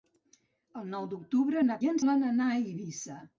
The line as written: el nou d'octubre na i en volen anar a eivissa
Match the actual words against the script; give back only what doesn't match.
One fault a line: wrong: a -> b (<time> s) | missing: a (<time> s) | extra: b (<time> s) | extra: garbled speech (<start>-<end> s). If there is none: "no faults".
no faults